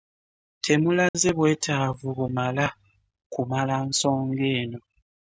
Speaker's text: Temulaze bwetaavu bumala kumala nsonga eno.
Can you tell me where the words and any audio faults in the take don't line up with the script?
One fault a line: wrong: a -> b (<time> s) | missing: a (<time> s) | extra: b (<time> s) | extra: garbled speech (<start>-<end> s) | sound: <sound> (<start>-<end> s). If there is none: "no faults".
sound: dropout (1.1-1.1 s)